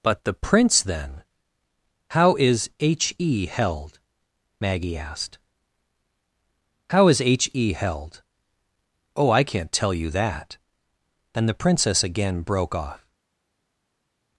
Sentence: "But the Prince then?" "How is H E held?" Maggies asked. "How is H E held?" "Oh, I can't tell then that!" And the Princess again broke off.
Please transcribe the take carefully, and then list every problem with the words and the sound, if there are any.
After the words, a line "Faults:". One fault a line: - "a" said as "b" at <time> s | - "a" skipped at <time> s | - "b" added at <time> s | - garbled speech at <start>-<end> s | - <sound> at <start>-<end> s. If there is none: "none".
"But the Prince then?" "How is H E held?" Maggie asked. "How is H E held?" "Oh, I can't tell you that!" And the Princess again broke off.
Faults:
- "Maggies" said as "Maggie" at 4.6 s
- "then" said as "you" at 9.9 s